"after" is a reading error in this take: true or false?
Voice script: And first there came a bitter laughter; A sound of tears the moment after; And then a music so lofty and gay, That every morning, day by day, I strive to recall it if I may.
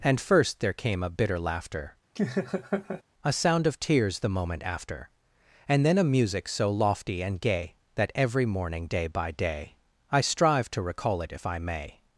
false